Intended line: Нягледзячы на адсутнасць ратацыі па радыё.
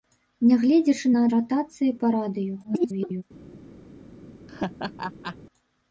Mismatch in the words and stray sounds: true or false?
true